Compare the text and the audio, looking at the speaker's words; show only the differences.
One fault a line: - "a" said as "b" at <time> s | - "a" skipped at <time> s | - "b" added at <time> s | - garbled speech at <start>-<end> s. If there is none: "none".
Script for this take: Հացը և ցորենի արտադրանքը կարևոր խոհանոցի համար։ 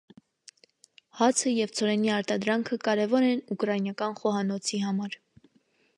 - "են ուկրաինական" added at 3.3 s